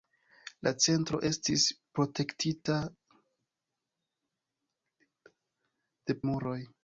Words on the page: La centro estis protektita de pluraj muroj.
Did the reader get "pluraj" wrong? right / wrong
wrong